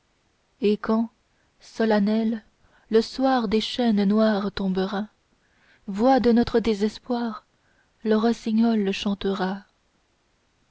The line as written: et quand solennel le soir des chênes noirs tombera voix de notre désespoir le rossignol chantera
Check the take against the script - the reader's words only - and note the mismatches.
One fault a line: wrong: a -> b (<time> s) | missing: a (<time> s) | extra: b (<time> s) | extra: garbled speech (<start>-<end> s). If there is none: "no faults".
no faults